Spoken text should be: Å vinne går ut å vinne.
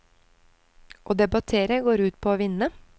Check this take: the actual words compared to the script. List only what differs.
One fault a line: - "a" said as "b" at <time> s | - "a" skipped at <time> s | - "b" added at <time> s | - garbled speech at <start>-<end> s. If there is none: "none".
- "vinne" said as "debattere" at 1.2 s
- "på" added at 2.2 s